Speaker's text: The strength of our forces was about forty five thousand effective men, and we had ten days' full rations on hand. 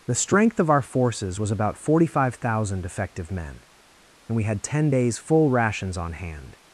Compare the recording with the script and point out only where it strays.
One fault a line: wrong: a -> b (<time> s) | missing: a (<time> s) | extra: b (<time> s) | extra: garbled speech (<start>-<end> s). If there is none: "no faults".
no faults